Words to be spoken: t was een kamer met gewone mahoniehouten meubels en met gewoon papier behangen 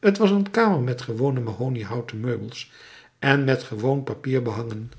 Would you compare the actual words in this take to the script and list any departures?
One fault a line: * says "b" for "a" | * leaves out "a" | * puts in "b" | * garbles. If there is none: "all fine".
all fine